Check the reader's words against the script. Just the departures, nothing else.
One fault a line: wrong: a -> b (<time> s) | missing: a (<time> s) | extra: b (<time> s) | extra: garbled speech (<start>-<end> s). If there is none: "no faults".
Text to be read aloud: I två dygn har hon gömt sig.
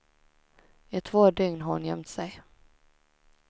no faults